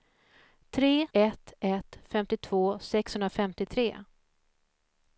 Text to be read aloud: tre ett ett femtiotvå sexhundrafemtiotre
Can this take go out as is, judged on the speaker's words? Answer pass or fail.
pass